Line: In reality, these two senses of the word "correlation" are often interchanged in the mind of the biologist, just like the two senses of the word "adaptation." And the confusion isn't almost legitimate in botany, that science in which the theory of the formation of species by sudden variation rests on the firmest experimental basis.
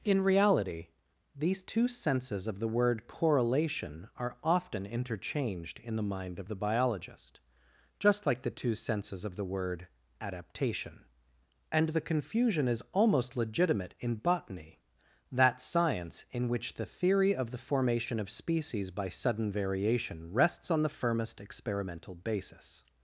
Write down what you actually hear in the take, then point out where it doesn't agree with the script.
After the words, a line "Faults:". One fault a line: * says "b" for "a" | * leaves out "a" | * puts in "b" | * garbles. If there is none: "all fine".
In reality, these two senses of the word "correlation" are often interchanged in the mind of the biologist, just like the two senses of the word "adaptation." And the confusion is almost legitimate in botany, that science in which the theory of the formation of species by sudden variation rests on the firmest experimental basis.
Faults:
* says "is" for "isn't"